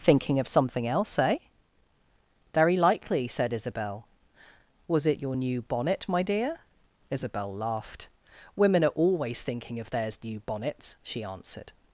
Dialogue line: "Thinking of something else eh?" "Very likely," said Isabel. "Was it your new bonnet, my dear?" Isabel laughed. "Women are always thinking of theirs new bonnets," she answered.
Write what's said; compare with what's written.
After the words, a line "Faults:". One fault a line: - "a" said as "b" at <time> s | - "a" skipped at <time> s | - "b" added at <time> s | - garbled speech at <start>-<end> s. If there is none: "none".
"Thinking of something else eh?" "Very likely," said Isabel. "Was it your new bonnet, my dear?" Isabel laughed. "Women are always thinking of theirs new bonnets," she answered.
Faults:
none